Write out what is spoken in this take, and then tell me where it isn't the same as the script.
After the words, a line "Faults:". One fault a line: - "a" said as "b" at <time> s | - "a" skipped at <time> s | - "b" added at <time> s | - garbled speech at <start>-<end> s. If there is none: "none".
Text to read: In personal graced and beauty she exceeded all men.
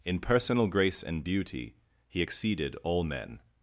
In personal grace and beauty he exceeded all men.
Faults:
- "graced" said as "grace" at 0.7 s
- "she" said as "he" at 2.1 s